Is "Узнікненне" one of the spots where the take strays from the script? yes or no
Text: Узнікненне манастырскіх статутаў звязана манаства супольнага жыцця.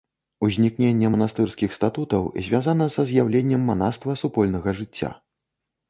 no